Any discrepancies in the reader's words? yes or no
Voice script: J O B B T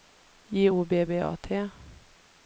yes